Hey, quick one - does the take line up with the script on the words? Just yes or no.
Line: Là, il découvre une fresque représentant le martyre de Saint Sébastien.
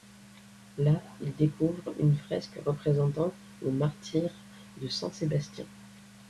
yes